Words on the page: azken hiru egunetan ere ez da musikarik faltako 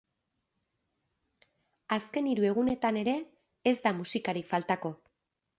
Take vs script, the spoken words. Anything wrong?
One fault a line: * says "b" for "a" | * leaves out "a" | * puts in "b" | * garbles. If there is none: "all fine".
all fine